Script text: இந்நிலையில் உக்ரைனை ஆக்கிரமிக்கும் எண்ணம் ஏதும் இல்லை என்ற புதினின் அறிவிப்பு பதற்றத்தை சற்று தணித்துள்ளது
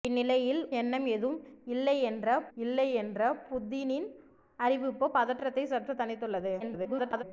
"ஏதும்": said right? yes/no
no